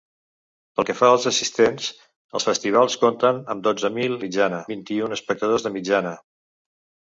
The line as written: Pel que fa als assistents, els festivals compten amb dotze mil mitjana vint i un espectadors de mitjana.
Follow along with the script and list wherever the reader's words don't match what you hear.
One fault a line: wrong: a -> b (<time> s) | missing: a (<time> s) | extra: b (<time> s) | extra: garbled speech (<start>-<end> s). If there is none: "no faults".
no faults